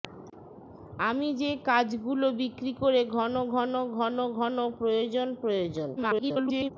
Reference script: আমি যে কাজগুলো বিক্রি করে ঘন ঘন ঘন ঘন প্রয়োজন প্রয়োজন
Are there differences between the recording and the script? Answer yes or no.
yes